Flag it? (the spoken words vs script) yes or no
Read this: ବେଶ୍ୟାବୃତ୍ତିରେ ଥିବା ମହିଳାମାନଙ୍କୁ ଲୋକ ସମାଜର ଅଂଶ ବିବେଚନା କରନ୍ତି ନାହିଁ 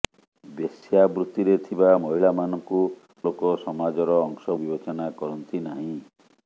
no